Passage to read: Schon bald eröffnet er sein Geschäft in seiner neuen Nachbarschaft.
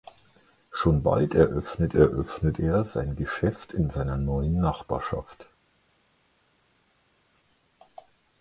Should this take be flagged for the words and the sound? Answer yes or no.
yes